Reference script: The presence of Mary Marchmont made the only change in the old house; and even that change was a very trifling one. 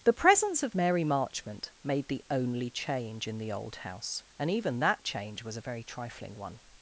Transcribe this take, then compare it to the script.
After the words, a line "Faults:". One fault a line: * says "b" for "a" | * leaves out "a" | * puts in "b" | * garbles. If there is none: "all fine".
The presence of Mary Marchmont made the only change in the old house; and even that change was a very trifling one.
Faults:
all fine